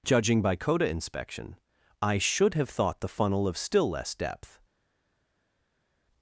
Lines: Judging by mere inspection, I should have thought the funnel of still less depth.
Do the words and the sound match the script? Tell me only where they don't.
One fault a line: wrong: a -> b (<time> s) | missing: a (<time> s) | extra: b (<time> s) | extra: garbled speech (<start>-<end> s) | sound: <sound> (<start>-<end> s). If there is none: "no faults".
wrong: mere -> coda (0.6 s)